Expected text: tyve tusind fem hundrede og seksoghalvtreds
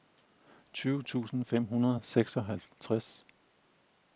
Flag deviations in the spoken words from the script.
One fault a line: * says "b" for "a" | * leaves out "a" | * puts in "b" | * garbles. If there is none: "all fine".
all fine